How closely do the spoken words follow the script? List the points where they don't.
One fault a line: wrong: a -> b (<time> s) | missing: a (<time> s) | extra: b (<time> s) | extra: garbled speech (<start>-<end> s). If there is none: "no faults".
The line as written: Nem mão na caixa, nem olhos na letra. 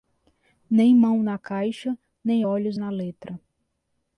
no faults